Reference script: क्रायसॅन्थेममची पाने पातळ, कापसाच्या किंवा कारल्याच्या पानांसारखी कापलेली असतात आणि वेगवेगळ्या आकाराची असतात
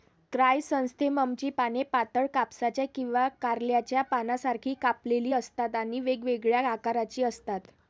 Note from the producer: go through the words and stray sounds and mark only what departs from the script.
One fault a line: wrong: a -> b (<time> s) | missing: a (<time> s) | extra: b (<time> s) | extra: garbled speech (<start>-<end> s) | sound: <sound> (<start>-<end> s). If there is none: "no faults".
no faults